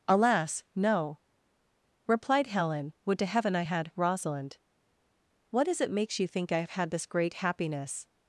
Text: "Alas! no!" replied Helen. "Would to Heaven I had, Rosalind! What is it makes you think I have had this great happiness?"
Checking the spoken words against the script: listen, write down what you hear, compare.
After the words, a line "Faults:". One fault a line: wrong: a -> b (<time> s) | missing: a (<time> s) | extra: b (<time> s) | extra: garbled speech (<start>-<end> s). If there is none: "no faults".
"Alas! no!" replied Helen. "Would to Heaven I had, Rosalind! What is it makes you think I have had this great happiness?"
Faults:
no faults